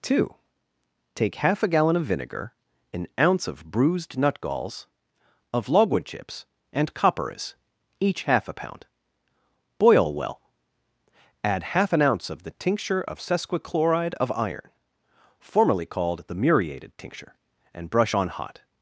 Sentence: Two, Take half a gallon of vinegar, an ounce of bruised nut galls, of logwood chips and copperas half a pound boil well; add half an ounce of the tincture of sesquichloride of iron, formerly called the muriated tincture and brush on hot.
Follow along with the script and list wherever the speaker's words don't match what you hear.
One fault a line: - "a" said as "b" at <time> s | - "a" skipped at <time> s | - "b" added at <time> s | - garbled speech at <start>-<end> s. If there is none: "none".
- "each" added at 8.0 s